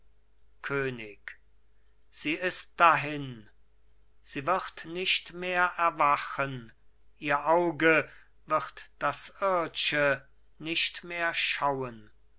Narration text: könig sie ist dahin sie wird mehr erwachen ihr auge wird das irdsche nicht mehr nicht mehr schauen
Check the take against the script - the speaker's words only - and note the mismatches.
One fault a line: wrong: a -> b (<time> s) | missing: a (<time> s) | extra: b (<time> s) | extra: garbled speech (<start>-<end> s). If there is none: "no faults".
extra: nicht (4.8 s)
missing: nicht mehr (11.3 s)